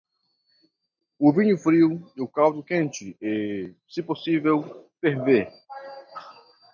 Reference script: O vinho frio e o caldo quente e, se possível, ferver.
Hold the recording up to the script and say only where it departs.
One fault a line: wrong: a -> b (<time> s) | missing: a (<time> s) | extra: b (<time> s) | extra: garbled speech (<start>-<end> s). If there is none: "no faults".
no faults